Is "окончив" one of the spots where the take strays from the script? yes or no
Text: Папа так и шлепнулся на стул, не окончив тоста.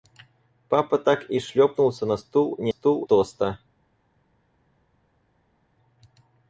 yes